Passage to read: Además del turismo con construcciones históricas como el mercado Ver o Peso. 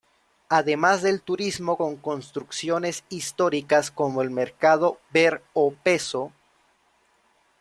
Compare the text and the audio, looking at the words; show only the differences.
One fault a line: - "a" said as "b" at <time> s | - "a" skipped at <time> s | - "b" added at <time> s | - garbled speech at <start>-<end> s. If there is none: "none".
none